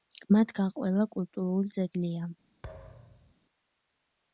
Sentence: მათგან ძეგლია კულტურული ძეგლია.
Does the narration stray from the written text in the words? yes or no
yes